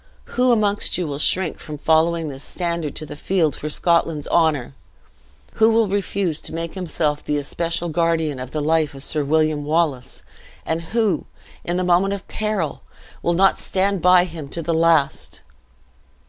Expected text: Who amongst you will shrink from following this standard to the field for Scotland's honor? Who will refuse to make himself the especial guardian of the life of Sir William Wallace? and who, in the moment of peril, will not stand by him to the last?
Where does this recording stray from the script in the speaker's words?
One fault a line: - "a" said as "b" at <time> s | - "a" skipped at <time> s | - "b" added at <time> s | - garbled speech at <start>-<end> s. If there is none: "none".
none